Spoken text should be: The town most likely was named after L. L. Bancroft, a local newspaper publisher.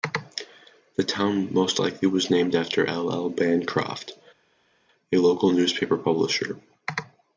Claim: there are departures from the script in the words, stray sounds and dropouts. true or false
false